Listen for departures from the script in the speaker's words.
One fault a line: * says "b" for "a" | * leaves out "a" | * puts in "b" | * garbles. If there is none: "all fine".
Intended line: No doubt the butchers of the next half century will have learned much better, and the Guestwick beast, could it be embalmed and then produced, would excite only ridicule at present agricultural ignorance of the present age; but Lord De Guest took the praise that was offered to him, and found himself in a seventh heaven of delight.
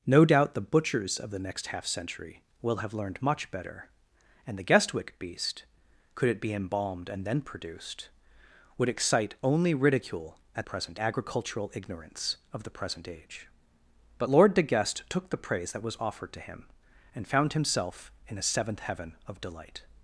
all fine